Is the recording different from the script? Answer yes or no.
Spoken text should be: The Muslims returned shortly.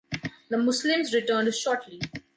no